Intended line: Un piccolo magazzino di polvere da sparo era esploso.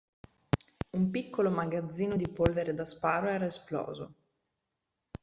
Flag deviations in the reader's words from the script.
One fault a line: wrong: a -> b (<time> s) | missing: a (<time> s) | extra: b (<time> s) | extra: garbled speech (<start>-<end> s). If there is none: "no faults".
no faults